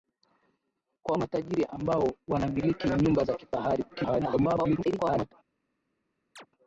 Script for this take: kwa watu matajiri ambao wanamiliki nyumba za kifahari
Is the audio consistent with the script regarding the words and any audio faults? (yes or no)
no